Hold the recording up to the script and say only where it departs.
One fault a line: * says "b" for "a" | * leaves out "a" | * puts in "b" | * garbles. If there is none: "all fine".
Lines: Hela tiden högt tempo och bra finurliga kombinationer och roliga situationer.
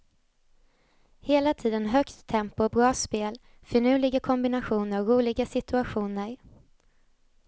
* puts in "spel"